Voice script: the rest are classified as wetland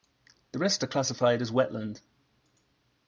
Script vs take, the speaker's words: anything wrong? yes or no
no